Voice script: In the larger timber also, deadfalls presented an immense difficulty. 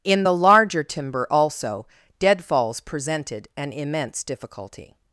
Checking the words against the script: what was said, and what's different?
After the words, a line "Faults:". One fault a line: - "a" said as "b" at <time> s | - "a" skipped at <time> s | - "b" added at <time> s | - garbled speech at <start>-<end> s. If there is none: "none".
In the larger timber also, deadfalls presented an immense difficulty.
Faults:
none